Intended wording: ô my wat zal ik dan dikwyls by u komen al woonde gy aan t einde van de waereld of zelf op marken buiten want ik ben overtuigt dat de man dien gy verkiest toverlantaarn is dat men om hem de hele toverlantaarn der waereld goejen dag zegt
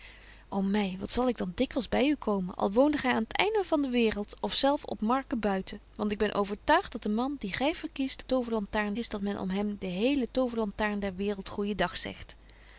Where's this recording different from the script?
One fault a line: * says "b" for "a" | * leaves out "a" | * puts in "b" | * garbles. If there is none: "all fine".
all fine